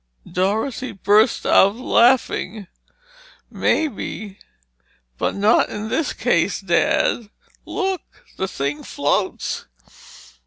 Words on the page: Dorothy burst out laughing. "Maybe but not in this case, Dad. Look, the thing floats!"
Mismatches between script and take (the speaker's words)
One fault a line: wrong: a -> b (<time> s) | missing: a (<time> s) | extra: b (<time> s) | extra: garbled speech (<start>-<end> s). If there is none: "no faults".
no faults